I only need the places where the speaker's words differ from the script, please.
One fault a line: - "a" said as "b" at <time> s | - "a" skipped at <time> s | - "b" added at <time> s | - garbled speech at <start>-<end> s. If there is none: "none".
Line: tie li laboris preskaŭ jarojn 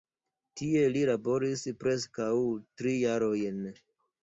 - "tri" added at 2.8 s